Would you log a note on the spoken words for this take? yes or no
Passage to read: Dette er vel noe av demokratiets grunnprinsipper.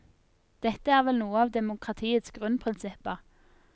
no